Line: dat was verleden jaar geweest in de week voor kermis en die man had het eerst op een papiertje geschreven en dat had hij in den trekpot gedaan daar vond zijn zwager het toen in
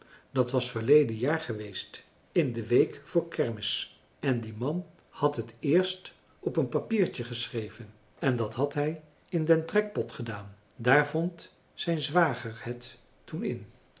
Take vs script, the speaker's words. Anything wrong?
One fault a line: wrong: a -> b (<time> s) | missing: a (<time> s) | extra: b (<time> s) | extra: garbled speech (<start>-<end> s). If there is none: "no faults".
no faults